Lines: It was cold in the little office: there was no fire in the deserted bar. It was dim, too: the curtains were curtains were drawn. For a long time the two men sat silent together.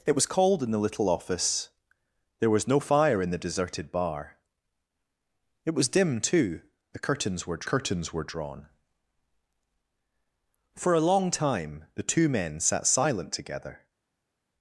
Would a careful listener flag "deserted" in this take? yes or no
no